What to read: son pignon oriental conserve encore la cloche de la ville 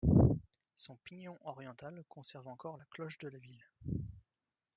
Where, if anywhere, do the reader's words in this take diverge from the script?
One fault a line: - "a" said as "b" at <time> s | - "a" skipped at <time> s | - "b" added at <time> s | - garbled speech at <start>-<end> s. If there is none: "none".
none